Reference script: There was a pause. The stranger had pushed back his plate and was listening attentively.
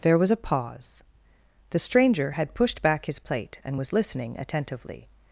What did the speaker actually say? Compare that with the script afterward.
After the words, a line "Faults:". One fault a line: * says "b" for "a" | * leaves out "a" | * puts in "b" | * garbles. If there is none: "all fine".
There was a pause. The stranger had pushed back his plate and was listening attentively.
Faults:
all fine